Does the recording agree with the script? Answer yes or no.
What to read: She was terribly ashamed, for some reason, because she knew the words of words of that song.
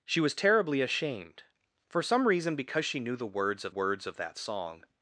yes